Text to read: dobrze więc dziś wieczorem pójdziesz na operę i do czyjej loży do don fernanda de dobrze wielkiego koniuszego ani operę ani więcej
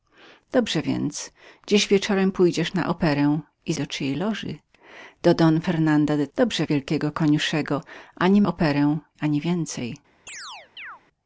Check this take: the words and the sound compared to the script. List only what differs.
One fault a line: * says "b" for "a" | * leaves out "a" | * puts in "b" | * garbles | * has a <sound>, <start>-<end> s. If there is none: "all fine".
* has a chirp, 10.3-11.0 s